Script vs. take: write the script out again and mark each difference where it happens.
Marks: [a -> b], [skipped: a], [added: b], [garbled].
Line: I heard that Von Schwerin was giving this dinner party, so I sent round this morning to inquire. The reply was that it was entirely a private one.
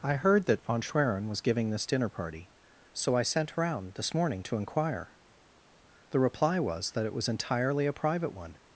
I heard that Von Schwerin was giving this dinner party, so I sent round this morning to inquire. The reply was that it was entirely a private one.